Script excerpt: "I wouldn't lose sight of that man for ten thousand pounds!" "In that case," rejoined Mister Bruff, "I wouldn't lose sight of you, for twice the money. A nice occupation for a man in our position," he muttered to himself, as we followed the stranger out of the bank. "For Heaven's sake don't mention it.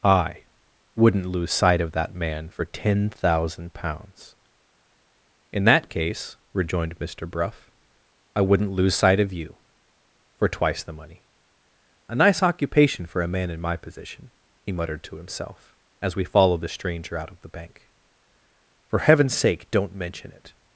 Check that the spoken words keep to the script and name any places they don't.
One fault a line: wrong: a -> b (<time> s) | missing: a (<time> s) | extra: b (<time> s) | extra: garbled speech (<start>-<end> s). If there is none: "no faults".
wrong: our -> my (13.6 s)